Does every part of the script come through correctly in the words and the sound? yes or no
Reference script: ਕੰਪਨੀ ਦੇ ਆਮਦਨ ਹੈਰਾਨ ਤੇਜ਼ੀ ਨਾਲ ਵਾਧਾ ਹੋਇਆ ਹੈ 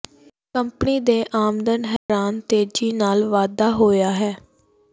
no